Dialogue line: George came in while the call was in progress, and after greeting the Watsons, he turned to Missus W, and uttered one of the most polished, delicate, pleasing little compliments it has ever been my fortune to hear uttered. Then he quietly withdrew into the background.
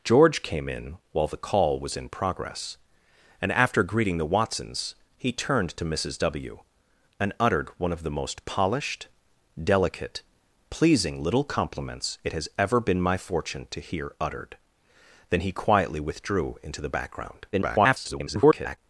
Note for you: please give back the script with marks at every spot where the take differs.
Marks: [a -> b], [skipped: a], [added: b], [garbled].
George came in while the call was in progress, and after greeting the Watsons, he turned to Missus W, and uttered one of the most polished, delicate, pleasing little compliments it has ever been my fortune to hear uttered. Then he quietly withdrew into the background. [garbled]